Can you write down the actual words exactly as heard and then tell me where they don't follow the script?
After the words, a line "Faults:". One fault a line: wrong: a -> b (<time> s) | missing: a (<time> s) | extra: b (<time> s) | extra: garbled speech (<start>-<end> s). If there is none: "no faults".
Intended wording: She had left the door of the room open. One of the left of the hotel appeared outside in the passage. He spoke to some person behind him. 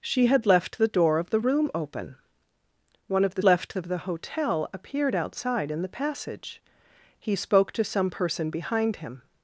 She had left the door of the room open. One of the left of the hotel appeared outside in the passage. He spoke to some person behind him.
Faults:
no faults